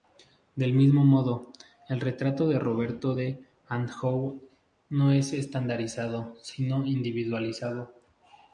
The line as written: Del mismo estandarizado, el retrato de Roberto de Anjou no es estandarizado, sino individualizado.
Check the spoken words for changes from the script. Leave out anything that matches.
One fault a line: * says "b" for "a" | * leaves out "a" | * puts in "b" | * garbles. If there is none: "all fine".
* says "modo" for "estandarizado"